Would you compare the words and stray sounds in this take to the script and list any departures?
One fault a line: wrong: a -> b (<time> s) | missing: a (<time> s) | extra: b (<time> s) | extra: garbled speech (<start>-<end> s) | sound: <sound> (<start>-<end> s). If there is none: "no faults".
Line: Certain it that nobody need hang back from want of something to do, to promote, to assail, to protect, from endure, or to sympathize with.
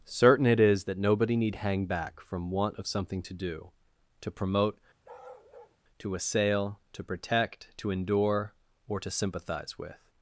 extra: is (0.6 s)
sound: bark (5.0-5.8 s)
wrong: from -> to (7.8 s)